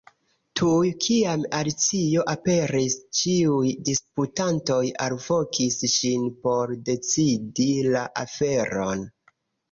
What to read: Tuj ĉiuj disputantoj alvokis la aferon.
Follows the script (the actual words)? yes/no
no